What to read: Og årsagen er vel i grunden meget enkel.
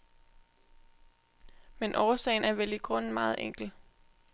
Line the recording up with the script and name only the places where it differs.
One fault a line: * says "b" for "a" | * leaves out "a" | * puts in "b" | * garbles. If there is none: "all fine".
* says "Men" for "Og"